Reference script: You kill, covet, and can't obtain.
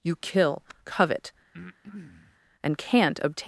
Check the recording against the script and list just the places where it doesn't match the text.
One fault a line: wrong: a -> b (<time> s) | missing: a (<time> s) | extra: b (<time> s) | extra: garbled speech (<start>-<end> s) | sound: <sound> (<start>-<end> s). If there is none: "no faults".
sound: breath (1.5-2.4 s)